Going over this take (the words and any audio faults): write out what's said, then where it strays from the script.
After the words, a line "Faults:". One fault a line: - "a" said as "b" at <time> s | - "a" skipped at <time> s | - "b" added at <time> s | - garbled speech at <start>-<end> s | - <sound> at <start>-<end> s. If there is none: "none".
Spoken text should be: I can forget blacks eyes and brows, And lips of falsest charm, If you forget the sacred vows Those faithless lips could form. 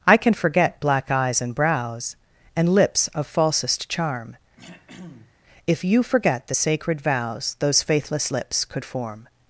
I can forget black eyes and brows, And lips of falsest charm, If you forget the sacred vows Those faithless lips could form.
Faults:
- "blacks" said as "black" at 0.8 s
- throat clearing at 4.6-5.4 s